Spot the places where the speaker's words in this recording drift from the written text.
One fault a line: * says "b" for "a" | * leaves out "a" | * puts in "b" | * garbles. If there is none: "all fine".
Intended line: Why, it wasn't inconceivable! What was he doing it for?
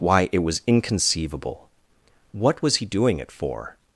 * says "was" for "wasn't"